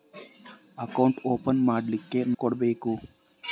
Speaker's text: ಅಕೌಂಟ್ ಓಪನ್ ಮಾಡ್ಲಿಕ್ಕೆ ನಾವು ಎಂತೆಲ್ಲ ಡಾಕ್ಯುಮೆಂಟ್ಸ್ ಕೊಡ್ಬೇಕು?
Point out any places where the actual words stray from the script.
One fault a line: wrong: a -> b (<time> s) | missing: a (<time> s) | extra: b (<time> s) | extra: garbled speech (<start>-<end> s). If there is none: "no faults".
missing: ನಾವು ಎಂತೆಲ್ಲ ಡಾಕ್ಯುಮೆಂಟ್ಸ್ (2.2 s)